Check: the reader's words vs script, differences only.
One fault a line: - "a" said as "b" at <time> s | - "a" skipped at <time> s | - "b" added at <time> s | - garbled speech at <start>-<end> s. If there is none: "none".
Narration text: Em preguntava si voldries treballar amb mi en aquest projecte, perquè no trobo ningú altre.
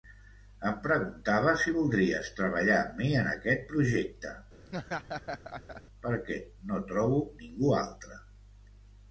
none